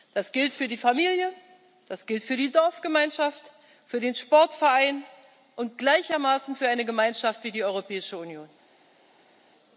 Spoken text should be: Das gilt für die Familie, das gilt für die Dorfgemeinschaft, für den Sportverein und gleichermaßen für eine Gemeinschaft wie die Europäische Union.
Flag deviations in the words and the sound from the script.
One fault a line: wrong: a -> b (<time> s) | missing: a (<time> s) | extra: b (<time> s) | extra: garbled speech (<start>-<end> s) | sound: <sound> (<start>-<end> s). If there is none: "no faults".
no faults